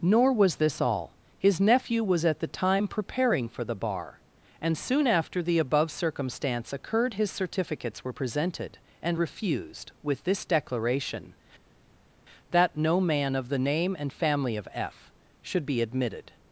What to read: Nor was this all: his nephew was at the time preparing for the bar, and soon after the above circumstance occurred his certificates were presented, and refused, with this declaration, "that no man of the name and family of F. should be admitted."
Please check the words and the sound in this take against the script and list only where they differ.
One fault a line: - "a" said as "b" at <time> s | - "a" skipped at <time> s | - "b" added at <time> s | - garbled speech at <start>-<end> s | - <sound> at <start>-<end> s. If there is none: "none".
none